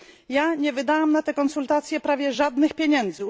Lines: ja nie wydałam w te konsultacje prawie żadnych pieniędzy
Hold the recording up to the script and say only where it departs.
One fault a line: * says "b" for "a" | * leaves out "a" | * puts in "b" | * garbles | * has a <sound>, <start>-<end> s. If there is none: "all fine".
* says "na" for "w"